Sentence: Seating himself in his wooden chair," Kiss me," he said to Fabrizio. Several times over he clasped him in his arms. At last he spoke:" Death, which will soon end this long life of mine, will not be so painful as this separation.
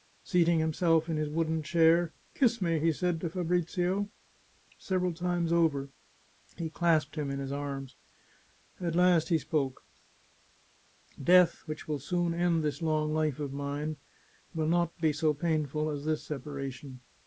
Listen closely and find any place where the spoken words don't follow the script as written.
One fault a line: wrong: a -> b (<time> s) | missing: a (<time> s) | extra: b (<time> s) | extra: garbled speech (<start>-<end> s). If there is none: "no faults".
no faults